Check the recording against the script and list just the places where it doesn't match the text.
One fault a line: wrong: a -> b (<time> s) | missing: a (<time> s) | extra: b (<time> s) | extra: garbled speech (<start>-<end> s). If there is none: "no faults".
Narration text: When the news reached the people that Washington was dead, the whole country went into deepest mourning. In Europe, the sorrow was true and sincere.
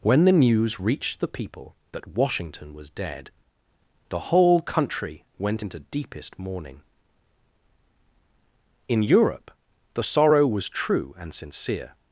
no faults